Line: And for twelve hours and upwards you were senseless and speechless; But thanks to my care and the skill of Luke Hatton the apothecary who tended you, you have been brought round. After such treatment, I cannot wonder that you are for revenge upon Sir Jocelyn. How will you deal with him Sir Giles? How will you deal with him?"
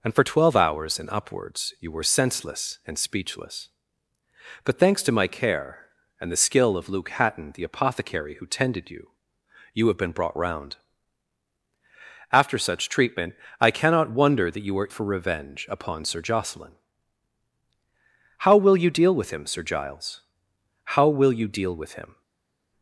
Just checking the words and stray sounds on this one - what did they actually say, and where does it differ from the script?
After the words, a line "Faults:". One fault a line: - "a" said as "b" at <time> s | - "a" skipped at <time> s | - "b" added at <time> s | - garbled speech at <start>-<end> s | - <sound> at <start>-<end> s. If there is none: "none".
And for twelve hours and upwards you were senseless and speechless; But thanks to my care and the skill of Luke Hatton the apothecary who tended you, you have been brought round. After such treatment, I cannot wonder that you are for revenge upon Sir Jocelyn. How will you deal with him Sir Giles? How will you deal with him?"
Faults:
none